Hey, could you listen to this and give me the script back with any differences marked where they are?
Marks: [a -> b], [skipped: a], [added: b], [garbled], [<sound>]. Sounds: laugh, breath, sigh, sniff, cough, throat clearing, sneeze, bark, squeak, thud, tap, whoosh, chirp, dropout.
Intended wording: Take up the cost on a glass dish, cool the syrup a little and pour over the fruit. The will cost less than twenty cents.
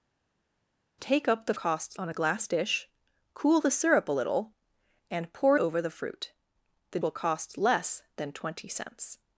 Take up the cost on a glass dish, cool the syrup a little and pour over the fruit. The will cost less than twenty cents.